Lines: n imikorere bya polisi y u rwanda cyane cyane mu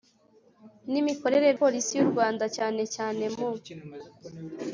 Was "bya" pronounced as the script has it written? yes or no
no